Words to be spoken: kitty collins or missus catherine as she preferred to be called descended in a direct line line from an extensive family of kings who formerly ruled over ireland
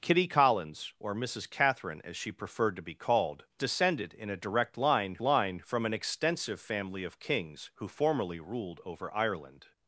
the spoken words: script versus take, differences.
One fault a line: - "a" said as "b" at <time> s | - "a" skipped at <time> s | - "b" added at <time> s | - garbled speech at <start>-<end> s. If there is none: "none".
none